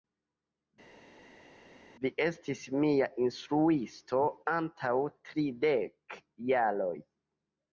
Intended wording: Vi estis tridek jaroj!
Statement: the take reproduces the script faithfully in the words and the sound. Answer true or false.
false